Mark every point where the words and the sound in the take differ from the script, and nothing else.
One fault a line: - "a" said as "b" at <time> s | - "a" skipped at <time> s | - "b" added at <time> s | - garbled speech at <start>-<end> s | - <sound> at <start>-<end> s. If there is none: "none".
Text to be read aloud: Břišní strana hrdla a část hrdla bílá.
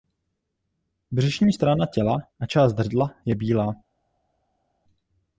- "hrdla" said as "těla" at 1.9 s
- "je" added at 3.2 s